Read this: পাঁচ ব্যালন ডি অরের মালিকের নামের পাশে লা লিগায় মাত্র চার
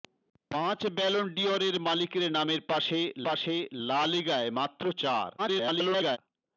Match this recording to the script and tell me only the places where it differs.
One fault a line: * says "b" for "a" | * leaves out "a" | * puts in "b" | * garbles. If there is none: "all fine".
* puts in "পাশে"
* garbles